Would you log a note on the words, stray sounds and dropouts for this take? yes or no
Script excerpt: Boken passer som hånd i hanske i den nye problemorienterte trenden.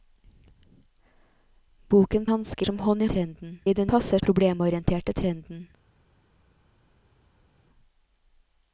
yes